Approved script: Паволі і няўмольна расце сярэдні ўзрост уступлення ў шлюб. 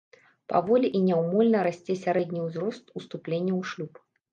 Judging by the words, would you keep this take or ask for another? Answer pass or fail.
pass